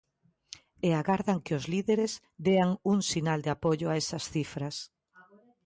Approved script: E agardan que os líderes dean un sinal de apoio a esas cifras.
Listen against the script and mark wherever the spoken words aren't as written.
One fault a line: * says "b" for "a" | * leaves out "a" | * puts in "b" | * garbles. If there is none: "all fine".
all fine